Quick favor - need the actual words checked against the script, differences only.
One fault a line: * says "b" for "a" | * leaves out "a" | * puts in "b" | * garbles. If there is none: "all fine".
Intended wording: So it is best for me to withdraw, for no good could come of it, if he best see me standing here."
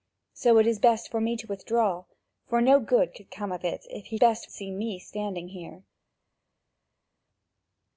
all fine